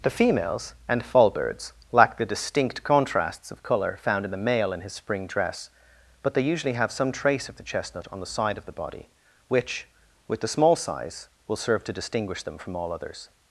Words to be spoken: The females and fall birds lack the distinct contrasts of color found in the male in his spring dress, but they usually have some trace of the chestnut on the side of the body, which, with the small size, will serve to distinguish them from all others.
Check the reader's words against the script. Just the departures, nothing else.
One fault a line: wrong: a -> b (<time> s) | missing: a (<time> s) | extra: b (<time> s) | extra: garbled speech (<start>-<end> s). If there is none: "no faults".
no faults